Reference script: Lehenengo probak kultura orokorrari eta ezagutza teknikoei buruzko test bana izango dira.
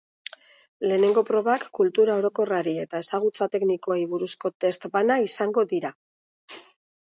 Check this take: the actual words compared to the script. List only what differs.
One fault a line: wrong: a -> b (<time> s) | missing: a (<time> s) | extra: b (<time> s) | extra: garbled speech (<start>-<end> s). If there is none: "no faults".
no faults